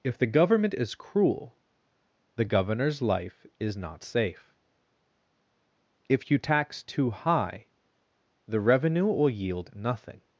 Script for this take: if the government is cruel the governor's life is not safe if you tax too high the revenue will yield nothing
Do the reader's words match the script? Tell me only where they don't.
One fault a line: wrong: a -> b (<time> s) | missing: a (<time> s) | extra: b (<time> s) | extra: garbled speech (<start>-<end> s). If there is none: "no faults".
no faults